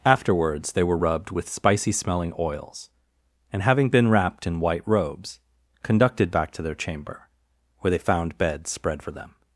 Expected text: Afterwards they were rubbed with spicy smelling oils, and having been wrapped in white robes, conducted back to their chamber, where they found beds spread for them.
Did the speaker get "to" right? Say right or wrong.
right